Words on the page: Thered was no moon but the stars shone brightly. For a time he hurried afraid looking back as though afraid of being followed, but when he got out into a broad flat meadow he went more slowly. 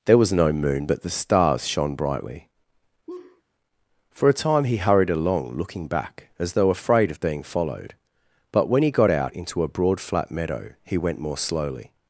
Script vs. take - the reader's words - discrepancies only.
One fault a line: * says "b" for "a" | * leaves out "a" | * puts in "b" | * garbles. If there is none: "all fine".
* says "There" for "Thered"
* says "along" for "afraid"